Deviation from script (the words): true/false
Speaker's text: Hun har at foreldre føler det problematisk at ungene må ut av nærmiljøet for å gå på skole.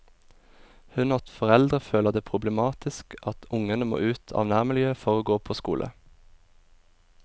false